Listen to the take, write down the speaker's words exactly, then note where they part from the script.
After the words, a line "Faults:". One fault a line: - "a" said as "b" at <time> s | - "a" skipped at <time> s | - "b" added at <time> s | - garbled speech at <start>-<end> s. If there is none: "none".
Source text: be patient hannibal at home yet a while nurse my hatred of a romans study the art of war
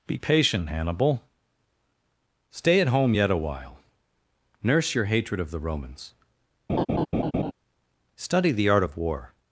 be patient hannibal stay at home yet a while nurse your hatred of the romans study the art of war
Faults:
- "stay" added at 2.5 s
- "my" said as "your" at 4.9 s
- "a" said as "the" at 5.5 s